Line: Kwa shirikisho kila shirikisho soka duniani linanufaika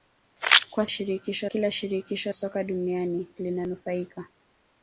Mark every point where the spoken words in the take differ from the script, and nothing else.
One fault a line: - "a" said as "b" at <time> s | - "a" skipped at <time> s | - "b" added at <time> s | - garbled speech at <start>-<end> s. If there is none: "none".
none